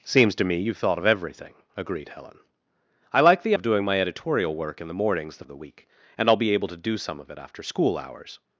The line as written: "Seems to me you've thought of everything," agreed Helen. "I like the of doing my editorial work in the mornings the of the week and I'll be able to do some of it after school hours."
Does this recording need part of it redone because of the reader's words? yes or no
no